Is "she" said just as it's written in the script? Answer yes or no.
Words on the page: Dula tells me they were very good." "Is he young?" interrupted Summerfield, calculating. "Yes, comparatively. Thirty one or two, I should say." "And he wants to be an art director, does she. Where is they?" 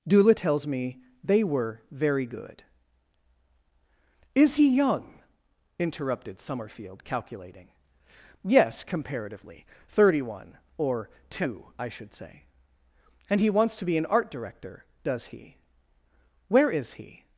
no